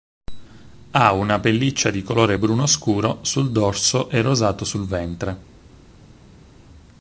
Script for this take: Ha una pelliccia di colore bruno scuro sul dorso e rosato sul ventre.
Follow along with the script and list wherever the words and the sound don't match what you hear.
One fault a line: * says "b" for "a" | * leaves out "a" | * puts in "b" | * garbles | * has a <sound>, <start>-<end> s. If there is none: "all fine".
all fine